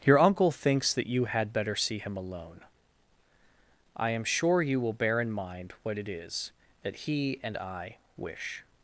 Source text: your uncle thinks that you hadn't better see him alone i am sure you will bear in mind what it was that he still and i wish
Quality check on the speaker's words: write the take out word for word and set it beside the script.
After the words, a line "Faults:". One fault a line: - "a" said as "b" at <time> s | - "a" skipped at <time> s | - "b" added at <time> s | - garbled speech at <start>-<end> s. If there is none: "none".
your uncle thinks that you had better see him alone i am sure you will bear in mind what it is that he and i wish
Faults:
- "hadn't" said as "had" at 1.3 s
- "was" said as "is" at 6.1 s
- "still" skipped at 7.4 s